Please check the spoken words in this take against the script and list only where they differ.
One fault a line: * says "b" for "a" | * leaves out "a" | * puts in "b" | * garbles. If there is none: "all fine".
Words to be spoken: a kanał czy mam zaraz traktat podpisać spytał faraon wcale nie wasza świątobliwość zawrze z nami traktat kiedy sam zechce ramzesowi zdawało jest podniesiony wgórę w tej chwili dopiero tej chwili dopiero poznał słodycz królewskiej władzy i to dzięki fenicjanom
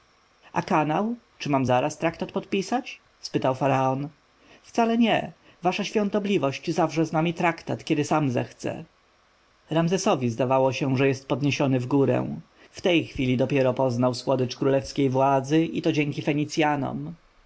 * puts in "się że"
* leaves out "tej chwili dopiero"